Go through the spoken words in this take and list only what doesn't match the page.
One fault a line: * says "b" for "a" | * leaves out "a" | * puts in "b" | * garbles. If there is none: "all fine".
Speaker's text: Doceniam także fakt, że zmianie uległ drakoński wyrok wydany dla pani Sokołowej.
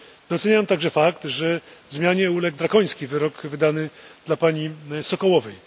all fine